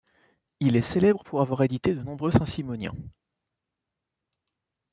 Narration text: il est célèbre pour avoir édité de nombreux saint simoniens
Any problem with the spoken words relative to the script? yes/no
no